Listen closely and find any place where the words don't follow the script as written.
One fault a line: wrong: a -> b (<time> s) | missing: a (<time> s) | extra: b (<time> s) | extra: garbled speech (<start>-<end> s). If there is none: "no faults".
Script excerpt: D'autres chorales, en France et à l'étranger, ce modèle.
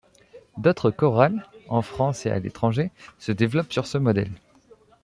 extra: se développent sur (3.2 s)